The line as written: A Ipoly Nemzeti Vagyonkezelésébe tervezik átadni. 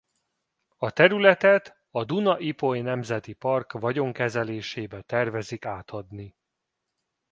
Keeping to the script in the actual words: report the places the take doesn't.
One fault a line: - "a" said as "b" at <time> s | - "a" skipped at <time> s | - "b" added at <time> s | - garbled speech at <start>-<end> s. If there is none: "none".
- "területet a Duna" added at 0.9 s
- "Park" added at 3.3 s